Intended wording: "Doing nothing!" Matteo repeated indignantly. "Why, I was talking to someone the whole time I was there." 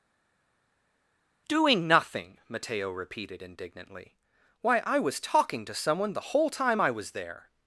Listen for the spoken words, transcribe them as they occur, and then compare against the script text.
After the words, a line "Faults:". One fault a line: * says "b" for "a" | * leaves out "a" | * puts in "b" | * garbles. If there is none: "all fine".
"Doing nothing!" Matteo repeated indignantly. "Why, I was talking to someone the whole time I was there."
Faults:
all fine